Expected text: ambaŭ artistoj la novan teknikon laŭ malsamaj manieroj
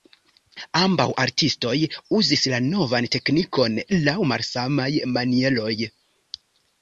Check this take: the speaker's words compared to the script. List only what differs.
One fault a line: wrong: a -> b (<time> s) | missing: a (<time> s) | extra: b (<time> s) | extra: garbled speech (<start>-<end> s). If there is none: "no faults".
extra: uzis (2.2 s)